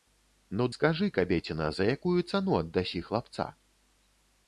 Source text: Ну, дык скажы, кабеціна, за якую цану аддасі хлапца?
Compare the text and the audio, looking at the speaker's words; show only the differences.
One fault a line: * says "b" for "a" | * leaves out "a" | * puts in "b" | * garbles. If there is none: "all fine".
* leaves out "дык"